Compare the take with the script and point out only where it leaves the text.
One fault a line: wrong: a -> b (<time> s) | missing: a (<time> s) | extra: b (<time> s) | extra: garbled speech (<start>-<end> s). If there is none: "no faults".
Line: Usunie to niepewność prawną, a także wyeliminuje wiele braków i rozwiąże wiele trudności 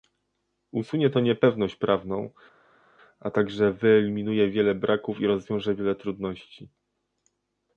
no faults